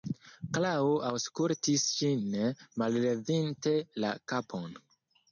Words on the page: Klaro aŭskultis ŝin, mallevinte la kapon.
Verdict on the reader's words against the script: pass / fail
pass